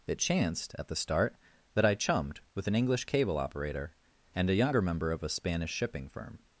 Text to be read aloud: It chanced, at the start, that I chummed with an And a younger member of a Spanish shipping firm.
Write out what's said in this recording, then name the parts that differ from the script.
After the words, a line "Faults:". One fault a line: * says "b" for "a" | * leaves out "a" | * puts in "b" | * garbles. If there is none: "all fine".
It chanced, at the start, that I chummed with an English cable operator and a younger member of a Spanish shipping firm.
Faults:
* puts in "English cable operator"